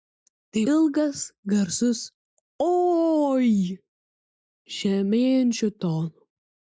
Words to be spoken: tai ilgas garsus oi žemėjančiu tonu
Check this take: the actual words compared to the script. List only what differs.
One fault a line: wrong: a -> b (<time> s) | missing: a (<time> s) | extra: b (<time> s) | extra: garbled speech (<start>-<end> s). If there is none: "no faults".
no faults